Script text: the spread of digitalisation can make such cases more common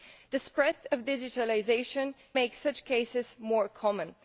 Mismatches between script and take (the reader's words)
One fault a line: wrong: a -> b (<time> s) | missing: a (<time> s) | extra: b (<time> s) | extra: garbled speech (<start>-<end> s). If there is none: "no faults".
missing: can (2.1 s)